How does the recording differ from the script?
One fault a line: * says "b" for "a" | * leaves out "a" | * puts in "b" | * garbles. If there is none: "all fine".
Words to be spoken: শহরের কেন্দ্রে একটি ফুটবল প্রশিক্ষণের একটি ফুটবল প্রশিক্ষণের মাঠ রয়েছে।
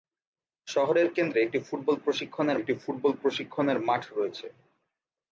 all fine